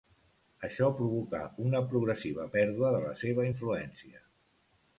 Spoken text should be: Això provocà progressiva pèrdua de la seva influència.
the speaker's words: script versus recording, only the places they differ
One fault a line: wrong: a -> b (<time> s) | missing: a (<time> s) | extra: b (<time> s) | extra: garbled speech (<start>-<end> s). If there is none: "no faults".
extra: una (1.6 s)